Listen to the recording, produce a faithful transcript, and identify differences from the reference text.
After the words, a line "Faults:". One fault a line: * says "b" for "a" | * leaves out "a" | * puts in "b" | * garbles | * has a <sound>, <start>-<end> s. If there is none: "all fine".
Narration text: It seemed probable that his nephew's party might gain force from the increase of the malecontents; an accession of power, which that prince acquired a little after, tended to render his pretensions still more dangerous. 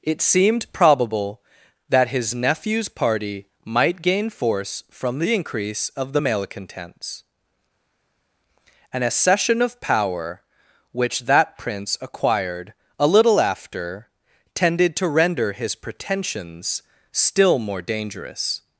It seemed probable that his nephew's party might gain force from the increase of the malecontents; an accession of power, which that prince acquired a little after, tended to render his pretensions still more dangerous.
Faults:
all fine